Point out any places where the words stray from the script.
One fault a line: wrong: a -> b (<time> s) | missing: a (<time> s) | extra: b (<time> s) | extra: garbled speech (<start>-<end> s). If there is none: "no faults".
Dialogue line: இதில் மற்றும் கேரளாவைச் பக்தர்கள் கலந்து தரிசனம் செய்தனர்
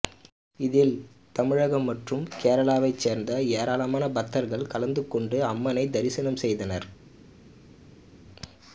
extra: தமிழகம் (1.4 s)
extra: சேர்ந்த ஏராளமான (3.0 s)
extra: கொண்டு அம்மனை (5.1 s)